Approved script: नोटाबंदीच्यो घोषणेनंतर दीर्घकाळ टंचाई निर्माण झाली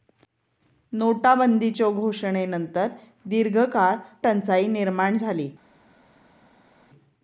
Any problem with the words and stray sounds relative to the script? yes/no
no